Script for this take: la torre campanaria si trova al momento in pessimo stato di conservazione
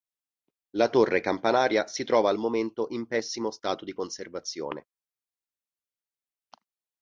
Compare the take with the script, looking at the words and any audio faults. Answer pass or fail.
pass